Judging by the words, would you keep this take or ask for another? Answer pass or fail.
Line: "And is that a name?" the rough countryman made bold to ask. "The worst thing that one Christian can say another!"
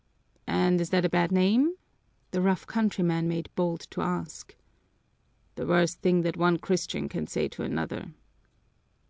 fail